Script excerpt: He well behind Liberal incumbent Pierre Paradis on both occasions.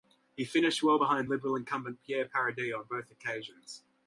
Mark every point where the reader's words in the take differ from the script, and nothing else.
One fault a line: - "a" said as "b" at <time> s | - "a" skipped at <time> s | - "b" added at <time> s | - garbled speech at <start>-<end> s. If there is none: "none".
- "finished" added at 0.5 s